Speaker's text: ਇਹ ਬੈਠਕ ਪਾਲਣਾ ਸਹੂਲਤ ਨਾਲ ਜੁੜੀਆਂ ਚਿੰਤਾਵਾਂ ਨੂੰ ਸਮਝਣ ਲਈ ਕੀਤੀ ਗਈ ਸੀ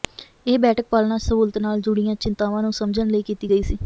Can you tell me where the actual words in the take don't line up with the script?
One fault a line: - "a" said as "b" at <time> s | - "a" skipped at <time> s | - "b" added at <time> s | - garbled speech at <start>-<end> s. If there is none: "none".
none